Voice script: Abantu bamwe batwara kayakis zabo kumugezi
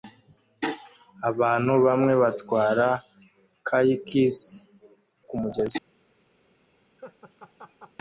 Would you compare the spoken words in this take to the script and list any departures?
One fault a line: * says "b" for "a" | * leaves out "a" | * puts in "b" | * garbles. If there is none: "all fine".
* leaves out "zabo"